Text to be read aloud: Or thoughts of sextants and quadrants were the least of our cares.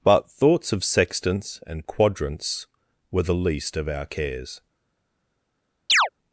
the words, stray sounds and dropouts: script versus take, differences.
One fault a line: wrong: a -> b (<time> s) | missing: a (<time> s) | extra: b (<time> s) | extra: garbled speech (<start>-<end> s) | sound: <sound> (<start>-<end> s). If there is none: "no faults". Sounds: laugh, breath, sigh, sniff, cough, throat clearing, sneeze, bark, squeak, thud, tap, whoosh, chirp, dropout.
wrong: Or -> BUT (0.0 s)
sound: chirp (5.9-6.1 s)